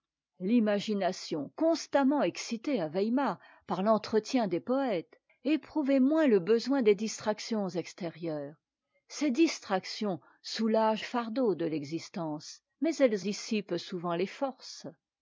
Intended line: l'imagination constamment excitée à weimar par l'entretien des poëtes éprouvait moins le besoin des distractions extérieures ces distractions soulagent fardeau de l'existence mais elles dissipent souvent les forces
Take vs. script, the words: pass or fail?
pass